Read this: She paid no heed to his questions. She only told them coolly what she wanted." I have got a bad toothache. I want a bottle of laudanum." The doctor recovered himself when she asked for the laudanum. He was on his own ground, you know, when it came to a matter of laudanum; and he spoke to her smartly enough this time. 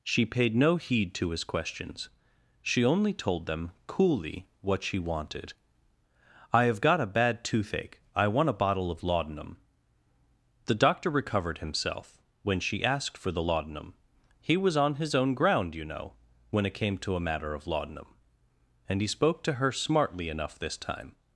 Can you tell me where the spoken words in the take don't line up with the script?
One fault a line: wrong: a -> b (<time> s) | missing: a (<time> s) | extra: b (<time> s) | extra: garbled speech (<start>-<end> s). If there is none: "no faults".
no faults